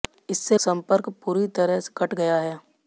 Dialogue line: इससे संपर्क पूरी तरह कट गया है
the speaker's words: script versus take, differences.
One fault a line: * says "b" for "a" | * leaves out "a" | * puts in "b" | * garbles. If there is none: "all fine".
all fine